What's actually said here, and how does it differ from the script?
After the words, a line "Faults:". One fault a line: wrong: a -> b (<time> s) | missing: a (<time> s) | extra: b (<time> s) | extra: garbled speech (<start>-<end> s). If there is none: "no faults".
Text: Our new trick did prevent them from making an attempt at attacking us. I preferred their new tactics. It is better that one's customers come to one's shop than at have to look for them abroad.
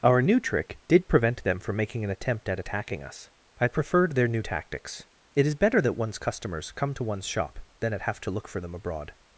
Our new trick did prevent them from making an attempt at attacking us. I preferred their new tactics. It is better that one's customers come to one's shop than at have to look for them abroad.
Faults:
no faults